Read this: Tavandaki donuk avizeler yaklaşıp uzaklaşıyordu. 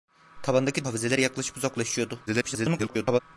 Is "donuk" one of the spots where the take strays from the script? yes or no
yes